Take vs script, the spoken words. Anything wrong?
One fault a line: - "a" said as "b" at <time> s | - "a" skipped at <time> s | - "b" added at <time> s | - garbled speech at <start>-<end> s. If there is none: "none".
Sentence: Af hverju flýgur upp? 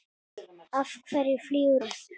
none